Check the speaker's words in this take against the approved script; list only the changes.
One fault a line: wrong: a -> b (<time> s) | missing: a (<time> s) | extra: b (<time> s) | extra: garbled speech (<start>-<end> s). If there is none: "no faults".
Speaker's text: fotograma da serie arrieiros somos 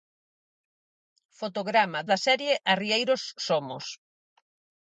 no faults